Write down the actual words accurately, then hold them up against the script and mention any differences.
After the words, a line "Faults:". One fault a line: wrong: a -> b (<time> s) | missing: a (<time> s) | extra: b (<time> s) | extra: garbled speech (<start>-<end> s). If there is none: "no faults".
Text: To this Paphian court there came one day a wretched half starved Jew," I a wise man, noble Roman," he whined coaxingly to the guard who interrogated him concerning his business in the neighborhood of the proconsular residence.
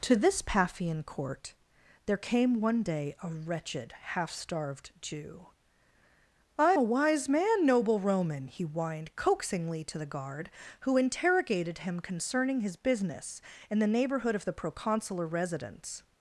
To this Paphian court there came one day a wretched half starved Jew," I a wise man, noble Roman," he whined coaxingly to the guard who interrogated him concerning his business in the neighborhood of the proconsular residence.
Faults:
no faults